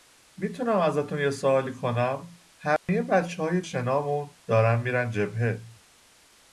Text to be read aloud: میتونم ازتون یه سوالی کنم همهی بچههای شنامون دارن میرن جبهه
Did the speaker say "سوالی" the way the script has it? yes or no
yes